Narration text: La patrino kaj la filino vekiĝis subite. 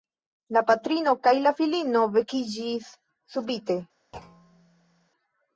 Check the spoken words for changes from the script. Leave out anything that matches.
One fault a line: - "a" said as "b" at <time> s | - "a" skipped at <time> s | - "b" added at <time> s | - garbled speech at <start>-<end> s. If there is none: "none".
none